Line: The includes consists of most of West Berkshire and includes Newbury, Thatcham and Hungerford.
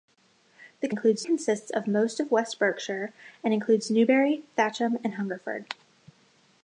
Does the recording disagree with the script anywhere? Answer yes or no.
no